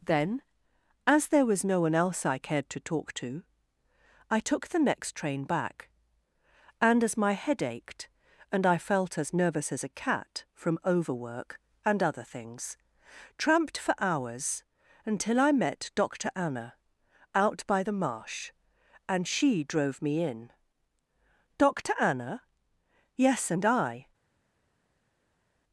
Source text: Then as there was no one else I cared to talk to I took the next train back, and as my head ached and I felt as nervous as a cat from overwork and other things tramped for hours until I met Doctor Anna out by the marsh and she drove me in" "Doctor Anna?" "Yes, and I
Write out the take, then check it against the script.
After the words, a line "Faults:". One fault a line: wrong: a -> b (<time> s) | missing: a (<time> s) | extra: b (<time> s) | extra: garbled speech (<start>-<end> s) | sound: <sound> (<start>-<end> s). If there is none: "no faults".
Then as there was no one else I cared to talk to I took the next train back, and as my head ached and I felt as nervous as a cat from overwork and other things tramped for hours until I met Doctor Anna out by the marsh and she drove me in" "Doctor Anna?" "Yes, and I
Faults:
no faults